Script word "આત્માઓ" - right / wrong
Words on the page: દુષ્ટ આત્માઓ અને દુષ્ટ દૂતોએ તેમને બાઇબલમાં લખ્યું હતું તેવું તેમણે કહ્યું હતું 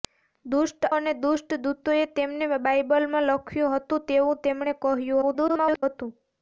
wrong